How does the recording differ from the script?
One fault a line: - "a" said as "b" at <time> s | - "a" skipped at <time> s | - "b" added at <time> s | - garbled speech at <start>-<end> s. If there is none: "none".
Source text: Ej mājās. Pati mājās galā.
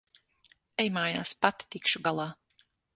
- "mājās" said as "tikšu" at 1.8 s